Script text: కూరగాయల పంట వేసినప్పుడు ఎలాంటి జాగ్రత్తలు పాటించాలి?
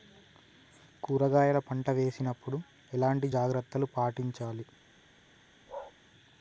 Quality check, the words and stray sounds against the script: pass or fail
fail